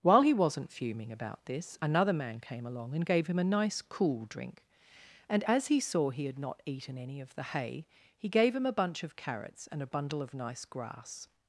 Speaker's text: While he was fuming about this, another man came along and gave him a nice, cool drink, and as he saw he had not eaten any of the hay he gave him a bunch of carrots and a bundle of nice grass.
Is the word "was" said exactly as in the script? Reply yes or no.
no